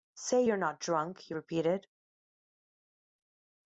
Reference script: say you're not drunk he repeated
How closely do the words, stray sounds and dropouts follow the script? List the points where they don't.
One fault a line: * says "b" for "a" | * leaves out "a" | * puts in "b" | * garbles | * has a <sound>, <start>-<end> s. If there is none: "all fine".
all fine